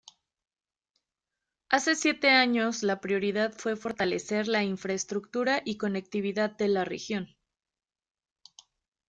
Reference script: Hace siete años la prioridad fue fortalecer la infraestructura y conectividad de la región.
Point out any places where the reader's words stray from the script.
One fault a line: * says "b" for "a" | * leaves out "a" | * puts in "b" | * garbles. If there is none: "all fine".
all fine